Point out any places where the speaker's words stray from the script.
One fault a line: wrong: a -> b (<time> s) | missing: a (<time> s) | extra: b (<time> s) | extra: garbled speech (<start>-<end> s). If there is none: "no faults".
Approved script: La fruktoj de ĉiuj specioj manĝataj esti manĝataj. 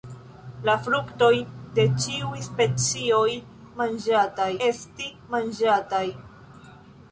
no faults